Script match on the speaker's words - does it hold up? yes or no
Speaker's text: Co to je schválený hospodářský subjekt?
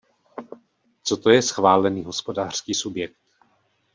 yes